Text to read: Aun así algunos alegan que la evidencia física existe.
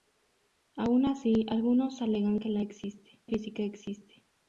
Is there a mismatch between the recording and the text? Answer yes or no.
yes